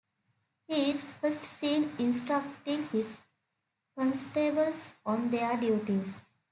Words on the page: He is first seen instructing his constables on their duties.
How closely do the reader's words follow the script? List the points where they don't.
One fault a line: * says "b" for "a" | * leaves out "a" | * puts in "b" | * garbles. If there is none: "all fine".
all fine